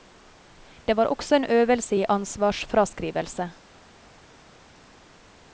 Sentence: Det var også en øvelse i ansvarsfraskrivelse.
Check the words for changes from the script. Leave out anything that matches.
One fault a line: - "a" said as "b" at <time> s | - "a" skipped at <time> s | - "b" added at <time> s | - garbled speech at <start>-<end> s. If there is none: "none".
none